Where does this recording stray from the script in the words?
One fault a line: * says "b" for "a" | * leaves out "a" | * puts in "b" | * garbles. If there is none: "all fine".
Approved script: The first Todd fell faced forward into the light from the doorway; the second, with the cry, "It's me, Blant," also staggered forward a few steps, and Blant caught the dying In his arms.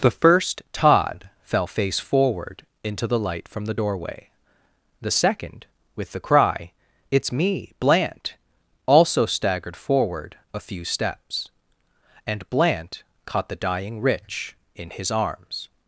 * says "face" for "faced"
* puts in "Rich"